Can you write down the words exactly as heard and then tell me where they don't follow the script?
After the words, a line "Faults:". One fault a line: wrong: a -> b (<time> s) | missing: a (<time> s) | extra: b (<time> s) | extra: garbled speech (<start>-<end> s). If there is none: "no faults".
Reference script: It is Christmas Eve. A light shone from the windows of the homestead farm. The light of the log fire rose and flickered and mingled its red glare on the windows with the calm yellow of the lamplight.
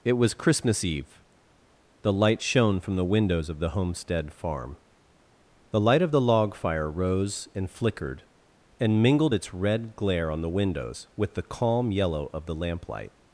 It was Christmas Eve. The light shone from the windows of the homestead farm. The light of the log fire rose and flickered and mingled its red glare on the windows with the calm yellow of the lamplight.
Faults:
wrong: is -> was (0.1 s)
wrong: A -> The (2.0 s)